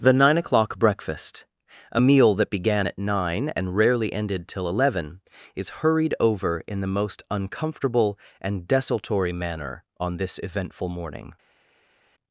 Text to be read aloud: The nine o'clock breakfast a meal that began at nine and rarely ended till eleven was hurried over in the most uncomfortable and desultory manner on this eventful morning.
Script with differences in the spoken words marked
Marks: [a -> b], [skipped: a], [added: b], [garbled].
The nine o'clock breakfast a meal that began at nine and rarely ended till eleven [was -> is] hurried over in the most uncomfortable and desultory manner on this eventful morning.